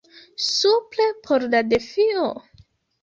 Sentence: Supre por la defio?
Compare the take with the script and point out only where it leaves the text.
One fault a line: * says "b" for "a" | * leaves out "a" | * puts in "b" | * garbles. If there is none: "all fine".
all fine